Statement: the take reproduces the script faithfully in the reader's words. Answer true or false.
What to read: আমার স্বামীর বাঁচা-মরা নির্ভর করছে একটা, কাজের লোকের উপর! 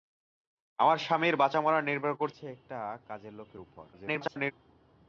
false